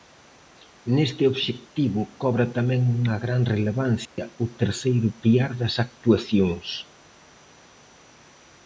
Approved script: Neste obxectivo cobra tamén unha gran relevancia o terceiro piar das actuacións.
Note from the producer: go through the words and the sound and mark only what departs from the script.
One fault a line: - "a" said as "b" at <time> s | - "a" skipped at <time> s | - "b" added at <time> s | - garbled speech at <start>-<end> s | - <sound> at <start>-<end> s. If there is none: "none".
- dropout at 4.1-4.2 s